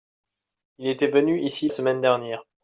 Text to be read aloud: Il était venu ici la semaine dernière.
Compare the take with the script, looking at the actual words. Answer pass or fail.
fail